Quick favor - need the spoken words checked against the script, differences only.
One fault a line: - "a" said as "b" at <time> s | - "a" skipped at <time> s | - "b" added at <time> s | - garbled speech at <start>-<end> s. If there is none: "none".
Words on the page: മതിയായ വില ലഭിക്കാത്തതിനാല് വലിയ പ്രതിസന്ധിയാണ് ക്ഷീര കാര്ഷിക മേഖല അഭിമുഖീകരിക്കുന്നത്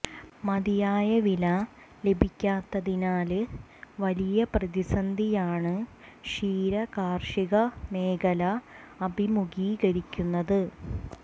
none